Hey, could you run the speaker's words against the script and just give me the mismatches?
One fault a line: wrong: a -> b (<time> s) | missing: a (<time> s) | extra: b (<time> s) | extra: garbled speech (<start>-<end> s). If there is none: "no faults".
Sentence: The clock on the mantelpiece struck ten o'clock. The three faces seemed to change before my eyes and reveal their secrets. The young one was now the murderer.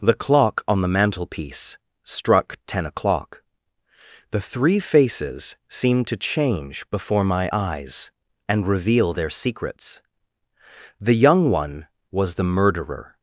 missing: now (12.3 s)